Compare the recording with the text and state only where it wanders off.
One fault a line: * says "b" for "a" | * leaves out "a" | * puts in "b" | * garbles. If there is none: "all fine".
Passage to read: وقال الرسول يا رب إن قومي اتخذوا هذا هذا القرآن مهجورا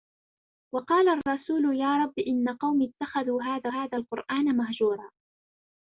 all fine